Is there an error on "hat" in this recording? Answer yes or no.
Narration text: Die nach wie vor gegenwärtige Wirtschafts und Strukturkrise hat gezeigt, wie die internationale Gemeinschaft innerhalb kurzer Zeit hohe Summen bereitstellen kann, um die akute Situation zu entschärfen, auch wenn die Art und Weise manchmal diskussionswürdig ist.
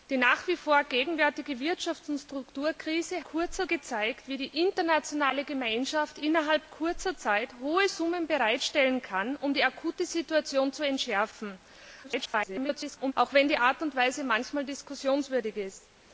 yes